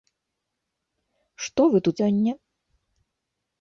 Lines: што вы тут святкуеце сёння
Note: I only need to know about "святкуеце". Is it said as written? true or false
false